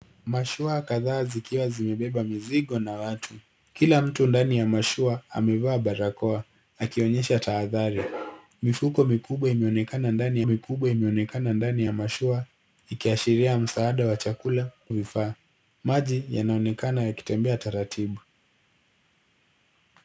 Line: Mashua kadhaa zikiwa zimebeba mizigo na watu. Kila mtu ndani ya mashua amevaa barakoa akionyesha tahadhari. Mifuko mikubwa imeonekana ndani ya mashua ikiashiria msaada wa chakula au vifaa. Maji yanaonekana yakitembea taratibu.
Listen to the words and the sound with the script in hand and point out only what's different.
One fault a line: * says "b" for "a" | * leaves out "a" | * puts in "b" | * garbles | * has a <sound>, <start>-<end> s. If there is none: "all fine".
* puts in "mikubwa imeonekana ndani"
* leaves out "au"